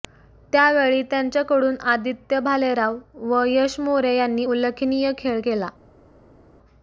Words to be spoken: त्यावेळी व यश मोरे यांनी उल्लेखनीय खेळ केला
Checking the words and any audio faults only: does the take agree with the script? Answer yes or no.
no